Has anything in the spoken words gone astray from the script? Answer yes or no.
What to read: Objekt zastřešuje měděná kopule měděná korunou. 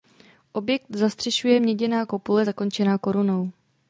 yes